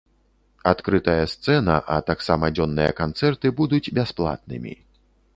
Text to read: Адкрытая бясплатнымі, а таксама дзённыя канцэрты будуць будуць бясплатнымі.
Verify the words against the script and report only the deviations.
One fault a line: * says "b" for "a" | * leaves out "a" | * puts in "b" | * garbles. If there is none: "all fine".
* says "сцэна" for "бясплатнымі"
* leaves out "будуць"